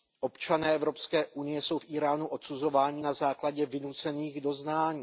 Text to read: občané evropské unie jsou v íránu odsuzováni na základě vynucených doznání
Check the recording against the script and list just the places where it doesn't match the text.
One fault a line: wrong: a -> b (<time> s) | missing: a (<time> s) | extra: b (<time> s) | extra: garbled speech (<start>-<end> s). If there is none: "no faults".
no faults